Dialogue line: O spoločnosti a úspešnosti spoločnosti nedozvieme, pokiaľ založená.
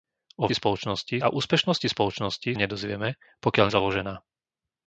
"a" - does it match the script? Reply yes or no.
yes